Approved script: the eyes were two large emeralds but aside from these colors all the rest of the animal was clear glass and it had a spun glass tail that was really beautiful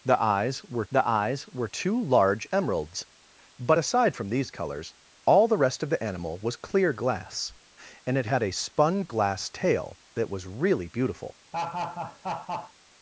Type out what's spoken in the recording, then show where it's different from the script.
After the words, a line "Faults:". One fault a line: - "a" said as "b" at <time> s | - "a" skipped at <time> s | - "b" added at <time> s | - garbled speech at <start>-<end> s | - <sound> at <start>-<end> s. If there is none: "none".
the eyes were the eyes were two large emeralds but aside from these colors all the rest of the animal was clear glass and it had a spun glass tail that was really beautiful
Faults:
- "the eyes were" added at 0.9 s
- laugh at 11.5-12.7 s